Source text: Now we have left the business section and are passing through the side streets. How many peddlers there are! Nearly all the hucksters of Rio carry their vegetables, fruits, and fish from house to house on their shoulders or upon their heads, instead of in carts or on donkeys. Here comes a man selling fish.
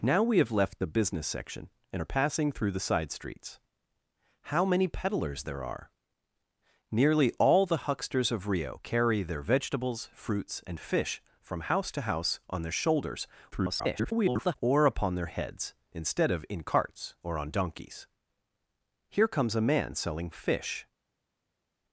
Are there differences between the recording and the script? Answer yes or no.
yes